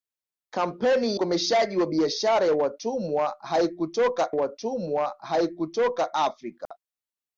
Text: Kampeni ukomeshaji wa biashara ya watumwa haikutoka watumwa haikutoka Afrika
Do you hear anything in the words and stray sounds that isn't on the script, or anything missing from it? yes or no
yes